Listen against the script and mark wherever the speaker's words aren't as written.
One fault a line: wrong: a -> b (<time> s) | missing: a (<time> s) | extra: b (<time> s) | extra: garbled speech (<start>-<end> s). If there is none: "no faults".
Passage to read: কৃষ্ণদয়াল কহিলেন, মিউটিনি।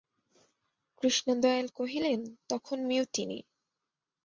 extra: তখন (2.5 s)